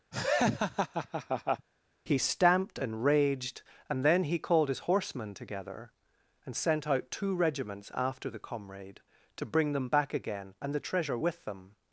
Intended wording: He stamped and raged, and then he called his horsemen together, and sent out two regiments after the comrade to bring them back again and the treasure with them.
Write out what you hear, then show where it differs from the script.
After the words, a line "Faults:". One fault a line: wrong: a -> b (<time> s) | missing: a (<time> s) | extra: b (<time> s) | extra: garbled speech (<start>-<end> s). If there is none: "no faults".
He stamped and raged, and then he called his horsemen together, and sent out two regiments after the comrade to bring them back again and the treasure with them.
Faults:
no faults